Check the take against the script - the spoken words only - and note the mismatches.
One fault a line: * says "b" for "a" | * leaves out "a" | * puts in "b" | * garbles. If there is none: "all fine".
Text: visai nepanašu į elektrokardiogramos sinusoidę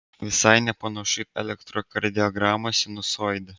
all fine